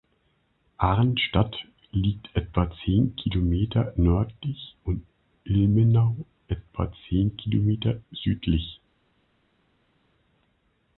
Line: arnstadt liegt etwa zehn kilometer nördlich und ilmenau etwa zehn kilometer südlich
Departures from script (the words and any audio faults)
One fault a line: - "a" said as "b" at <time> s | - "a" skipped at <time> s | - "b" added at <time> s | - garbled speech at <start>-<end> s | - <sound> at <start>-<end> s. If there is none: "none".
none